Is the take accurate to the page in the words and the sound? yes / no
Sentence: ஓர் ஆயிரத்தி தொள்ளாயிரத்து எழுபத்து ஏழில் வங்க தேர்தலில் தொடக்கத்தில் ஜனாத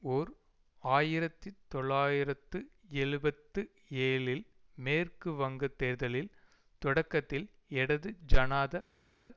no